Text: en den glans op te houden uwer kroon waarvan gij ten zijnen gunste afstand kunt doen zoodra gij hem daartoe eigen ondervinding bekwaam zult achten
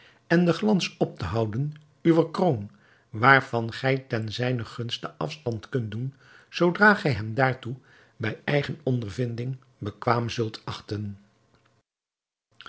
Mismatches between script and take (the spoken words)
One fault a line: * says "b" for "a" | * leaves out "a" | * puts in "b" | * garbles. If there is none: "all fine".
* puts in "bij"